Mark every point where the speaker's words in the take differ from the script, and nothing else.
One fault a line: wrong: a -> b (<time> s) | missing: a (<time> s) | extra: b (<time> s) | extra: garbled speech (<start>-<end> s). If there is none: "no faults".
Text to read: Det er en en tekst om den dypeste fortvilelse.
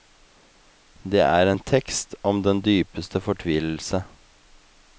missing: en (1.6 s)